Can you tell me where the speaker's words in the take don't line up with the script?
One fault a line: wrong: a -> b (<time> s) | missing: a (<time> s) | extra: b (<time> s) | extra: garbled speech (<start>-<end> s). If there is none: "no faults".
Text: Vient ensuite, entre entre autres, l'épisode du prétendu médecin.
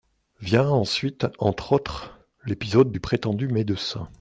missing: entre (1.7 s)